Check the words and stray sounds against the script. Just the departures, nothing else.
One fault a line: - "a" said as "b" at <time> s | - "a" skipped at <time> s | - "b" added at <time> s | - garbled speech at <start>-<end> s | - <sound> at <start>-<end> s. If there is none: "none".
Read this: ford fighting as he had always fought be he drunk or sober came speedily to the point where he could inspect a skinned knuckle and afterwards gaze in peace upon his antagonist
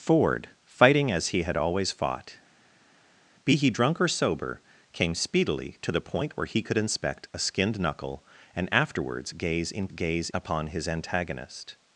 - "peace" said as "gaze" at 9.9 s